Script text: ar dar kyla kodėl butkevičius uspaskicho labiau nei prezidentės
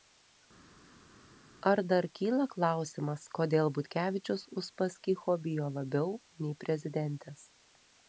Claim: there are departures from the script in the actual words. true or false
true